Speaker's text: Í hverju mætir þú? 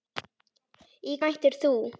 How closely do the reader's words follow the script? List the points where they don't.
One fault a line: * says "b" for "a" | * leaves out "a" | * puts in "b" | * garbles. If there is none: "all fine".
* leaves out "hverju"